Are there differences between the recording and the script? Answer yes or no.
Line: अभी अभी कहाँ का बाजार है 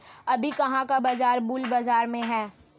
yes